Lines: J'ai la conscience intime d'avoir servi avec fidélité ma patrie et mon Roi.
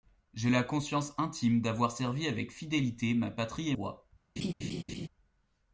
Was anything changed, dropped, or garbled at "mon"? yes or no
yes